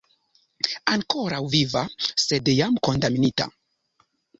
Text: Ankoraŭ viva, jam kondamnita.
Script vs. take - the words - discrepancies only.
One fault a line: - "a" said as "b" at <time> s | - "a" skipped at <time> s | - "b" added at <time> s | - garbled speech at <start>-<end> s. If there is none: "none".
- "sed" added at 2.3 s